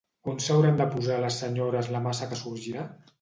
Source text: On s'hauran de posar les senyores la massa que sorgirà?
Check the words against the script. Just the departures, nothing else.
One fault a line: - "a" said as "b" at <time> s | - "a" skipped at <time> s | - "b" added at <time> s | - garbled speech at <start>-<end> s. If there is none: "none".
none